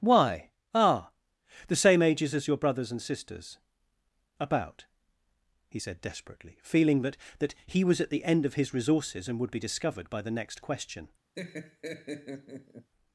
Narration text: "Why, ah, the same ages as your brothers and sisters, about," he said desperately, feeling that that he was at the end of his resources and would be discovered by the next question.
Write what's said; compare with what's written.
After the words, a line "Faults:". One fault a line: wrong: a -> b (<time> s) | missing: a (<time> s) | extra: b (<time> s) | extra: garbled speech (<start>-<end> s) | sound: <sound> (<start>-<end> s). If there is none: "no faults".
"Why, ah, the same ages as your brothers and sisters, about," he said desperately, feeling that that he was at the end of his resources and would be discovered by the next question.
Faults:
sound: laugh (11.4-12.9 s)